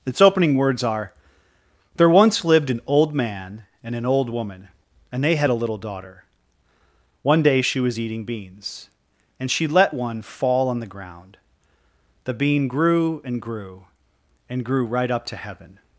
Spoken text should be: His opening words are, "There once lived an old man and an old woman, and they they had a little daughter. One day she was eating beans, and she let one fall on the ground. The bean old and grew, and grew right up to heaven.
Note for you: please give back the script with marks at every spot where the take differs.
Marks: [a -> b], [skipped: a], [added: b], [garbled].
[His -> Its] opening words are, "There once lived an old man and an old woman, and they [skipped: they] had a little daughter. One day she was eating beans, and she let one fall on the ground. The bean [old -> grew] and grew, and grew right up to heaven.